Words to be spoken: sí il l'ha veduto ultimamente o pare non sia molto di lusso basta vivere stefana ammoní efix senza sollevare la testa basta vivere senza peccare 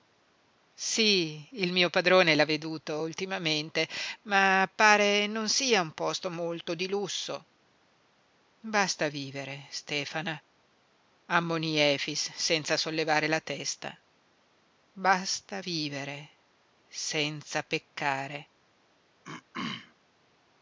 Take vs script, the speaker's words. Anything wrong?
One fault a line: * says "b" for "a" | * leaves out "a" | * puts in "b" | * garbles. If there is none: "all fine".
* puts in "mio padrone"
* says "ma" for "o"
* puts in "un posto"